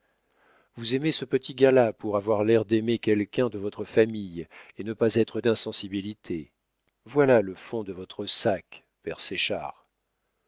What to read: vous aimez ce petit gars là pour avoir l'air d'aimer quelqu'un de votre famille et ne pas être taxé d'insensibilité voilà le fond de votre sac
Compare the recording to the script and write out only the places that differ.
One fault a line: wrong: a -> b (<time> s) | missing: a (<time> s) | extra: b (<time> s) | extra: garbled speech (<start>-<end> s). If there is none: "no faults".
missing: taxé (5.4 s)